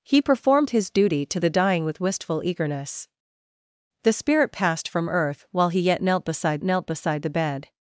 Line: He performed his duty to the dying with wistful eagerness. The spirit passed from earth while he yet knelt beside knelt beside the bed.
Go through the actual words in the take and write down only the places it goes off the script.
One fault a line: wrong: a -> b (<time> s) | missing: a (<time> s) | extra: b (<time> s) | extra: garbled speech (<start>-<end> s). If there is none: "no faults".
no faults